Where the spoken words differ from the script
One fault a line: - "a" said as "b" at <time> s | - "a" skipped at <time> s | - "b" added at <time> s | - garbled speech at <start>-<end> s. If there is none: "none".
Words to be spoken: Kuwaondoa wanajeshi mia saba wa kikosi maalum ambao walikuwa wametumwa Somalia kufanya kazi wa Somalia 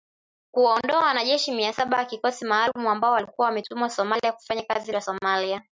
none